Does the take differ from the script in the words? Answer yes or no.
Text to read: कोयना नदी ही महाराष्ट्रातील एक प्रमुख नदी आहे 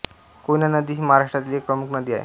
no